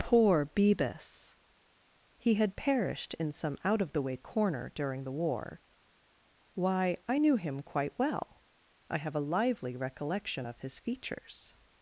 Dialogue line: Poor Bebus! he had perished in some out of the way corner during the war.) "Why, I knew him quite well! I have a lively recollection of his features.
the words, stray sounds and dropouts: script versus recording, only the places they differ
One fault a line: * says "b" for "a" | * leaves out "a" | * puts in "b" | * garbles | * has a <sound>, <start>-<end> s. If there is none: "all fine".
all fine